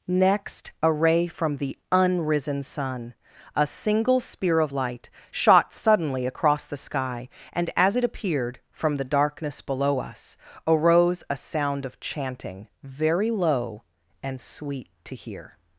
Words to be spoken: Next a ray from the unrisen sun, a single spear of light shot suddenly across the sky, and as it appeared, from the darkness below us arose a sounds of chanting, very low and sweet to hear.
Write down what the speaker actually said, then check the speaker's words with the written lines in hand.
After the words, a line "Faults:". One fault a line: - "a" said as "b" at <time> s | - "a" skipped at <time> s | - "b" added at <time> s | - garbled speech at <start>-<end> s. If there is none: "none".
Next a ray from the unrisen sun, a single spear of light shot suddenly across the sky, and as it appeared, from the darkness below us arose a sound of chanting, very low and sweet to hear.
Faults:
- "sounds" said as "sound" at 11.4 s